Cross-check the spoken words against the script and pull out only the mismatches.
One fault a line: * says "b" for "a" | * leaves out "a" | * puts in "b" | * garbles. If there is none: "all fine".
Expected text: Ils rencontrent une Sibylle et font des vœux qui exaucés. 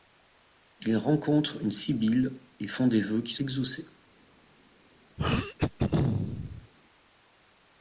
all fine